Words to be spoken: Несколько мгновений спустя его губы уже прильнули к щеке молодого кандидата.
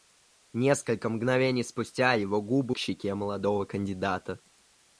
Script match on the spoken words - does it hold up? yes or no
no